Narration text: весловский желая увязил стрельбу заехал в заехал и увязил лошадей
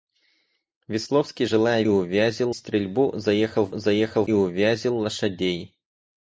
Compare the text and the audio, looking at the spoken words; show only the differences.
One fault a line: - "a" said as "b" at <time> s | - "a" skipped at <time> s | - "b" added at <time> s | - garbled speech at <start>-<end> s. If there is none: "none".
none